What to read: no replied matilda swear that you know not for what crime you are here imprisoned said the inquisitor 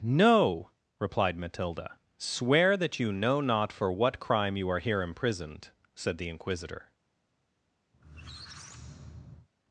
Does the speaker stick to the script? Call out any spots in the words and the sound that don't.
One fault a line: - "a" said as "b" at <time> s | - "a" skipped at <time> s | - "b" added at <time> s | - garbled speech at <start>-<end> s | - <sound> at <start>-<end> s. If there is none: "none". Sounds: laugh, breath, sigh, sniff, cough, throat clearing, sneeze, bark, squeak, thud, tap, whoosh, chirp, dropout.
- squeak at 7.9-9.5 s